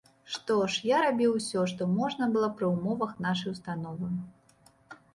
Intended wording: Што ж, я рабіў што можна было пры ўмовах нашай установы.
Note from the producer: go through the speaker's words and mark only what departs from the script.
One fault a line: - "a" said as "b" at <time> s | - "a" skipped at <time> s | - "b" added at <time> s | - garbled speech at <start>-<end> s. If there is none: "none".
- "усё" added at 1.4 s